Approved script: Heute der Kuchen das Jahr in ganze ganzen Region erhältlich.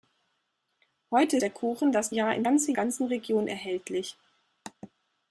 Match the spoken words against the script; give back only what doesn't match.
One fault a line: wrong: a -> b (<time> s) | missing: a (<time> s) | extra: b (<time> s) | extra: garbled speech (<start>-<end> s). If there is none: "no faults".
no faults